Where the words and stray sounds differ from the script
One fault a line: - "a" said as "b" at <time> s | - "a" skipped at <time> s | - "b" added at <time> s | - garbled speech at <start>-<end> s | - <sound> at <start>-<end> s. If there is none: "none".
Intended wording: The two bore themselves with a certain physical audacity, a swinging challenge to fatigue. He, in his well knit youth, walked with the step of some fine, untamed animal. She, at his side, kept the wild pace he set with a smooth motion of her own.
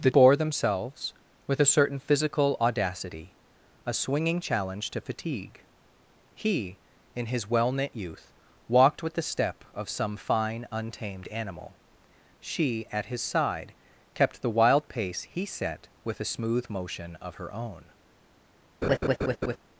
- "two" skipped at 0.1 s
- laugh at 18.8-19.6 s